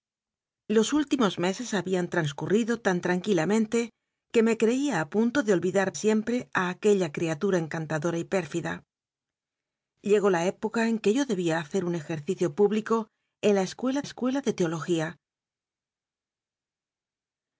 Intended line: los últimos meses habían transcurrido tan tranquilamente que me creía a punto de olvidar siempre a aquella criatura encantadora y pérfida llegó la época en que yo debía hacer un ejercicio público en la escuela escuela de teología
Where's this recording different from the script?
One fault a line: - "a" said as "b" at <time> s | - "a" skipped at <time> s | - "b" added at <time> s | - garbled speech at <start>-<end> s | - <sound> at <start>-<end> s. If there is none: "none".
none